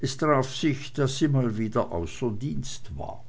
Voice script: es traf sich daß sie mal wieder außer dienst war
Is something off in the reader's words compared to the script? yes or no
no